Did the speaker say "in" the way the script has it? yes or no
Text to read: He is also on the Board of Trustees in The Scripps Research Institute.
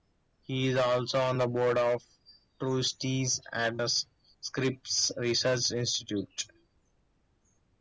no